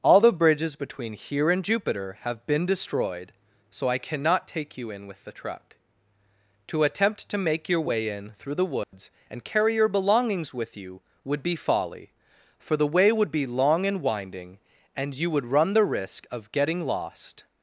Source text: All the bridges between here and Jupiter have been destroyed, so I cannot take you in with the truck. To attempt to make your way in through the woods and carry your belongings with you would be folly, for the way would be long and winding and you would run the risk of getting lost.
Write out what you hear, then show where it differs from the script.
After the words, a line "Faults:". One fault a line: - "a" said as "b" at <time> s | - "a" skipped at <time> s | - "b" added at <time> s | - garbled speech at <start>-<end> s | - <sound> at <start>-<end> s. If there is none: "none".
All the bridges between here and Jupiter have been destroyed, so I cannot take you in with the truck. To attempt to make your way in through the woods and carry your belongings with you would be folly, for the way would be long and winding and you would run the risk of getting lost.
Faults:
- dropout at 8.8-8.9 s